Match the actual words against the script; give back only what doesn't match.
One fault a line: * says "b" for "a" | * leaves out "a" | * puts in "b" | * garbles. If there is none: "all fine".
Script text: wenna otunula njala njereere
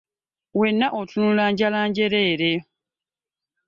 all fine